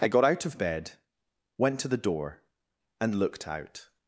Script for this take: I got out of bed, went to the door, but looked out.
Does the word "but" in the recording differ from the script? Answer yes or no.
yes